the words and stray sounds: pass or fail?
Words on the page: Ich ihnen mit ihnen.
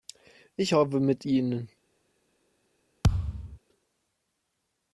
fail